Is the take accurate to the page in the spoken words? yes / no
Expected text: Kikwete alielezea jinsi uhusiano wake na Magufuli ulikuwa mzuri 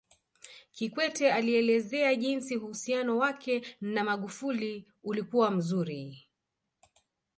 yes